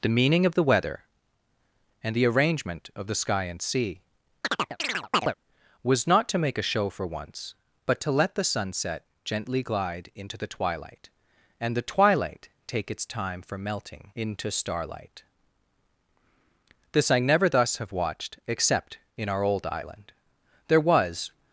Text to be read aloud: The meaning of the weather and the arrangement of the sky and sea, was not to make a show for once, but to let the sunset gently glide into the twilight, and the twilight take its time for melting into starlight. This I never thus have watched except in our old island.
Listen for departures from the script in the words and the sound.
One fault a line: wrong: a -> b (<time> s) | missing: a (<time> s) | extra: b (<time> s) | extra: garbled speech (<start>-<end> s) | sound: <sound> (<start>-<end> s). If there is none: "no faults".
sound: chirp (4.4-5.3 s)
extra: There was (20.7 s)